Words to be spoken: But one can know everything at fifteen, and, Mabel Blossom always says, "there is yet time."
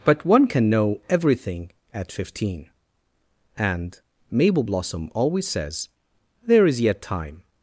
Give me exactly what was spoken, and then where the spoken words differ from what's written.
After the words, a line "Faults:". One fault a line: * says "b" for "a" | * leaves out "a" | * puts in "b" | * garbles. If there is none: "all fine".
But one can know everything at fifteen, and, Mabel Blossom always says, "there is yet time."
Faults:
all fine